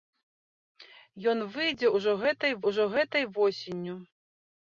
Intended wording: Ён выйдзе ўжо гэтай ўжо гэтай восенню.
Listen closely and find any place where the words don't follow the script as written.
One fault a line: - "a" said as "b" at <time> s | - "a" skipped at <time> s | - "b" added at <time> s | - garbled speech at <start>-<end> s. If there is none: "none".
none